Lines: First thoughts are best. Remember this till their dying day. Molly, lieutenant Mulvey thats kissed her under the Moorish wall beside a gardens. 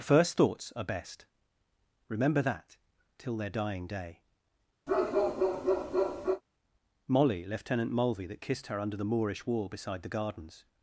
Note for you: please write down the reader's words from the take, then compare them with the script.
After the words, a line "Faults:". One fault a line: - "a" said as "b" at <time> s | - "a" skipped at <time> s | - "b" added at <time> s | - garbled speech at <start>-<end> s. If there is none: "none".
First thoughts are best. Remember that till their dying day. Molly, lieutenant Mulvey that kissed her under the Moorish wall beside the gardens.
Faults:
- "this" said as "that" at 2.4 s
- "thats" said as "that" at 8.3 s
- "a" said as "the" at 10.0 s